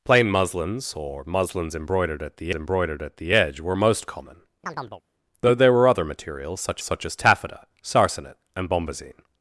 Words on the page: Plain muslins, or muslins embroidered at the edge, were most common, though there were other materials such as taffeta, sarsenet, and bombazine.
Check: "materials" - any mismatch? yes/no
no